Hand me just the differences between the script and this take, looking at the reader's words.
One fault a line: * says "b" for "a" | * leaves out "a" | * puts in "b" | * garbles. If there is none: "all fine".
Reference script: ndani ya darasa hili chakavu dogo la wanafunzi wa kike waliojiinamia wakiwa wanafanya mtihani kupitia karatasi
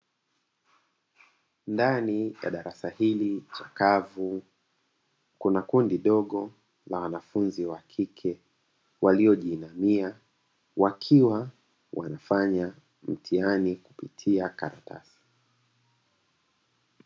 * puts in "kuna kundi"